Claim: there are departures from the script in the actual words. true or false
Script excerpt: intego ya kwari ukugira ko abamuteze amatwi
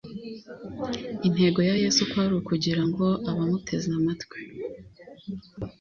true